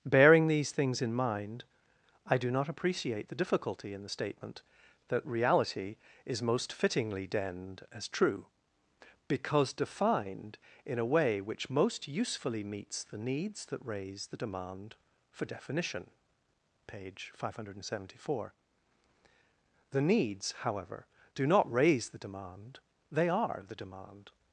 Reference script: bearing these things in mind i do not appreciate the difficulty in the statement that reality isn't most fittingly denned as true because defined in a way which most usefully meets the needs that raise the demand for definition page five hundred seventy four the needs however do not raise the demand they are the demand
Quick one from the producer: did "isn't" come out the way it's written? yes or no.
no